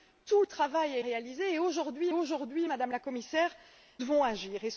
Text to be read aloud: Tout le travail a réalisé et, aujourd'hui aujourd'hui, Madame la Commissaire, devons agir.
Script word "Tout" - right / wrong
right